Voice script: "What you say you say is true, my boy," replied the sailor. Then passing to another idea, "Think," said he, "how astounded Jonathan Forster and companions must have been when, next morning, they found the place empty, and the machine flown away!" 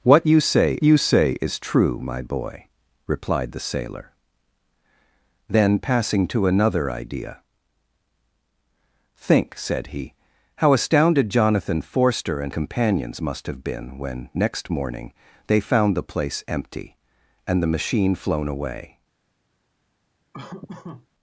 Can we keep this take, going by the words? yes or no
yes